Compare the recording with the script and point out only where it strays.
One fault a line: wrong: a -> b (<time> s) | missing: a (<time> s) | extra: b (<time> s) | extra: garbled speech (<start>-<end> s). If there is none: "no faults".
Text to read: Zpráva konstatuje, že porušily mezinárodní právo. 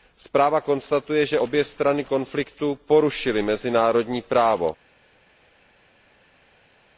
extra: obě strany konfliktu (1.4 s)